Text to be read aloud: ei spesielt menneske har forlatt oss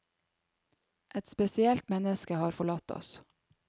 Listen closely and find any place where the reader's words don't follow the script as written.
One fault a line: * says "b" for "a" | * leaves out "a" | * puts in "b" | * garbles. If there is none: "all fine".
* says "et" for "ei"